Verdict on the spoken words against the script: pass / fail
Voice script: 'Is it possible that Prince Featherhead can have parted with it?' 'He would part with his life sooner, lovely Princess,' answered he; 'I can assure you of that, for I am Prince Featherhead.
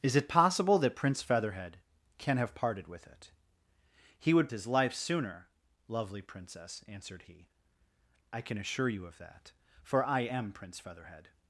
fail